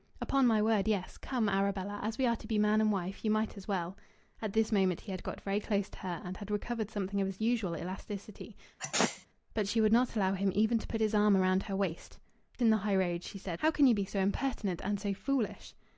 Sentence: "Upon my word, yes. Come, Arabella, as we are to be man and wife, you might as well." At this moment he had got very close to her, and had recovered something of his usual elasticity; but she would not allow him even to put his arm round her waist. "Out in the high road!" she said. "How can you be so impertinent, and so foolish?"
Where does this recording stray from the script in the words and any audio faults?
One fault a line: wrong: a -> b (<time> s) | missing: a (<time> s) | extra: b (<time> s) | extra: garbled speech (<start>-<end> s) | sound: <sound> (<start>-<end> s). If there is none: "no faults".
sound: sneeze (8.8-9.3 s)
missing: Out (12.2 s)